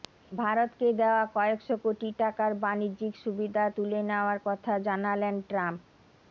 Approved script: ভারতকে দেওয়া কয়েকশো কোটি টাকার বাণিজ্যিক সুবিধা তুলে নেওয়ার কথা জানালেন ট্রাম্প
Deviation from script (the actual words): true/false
false